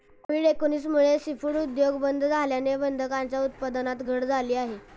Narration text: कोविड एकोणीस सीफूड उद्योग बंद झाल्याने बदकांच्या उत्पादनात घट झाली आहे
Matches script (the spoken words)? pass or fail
fail